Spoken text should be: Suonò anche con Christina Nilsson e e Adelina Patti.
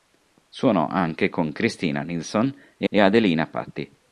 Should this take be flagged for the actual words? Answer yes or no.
no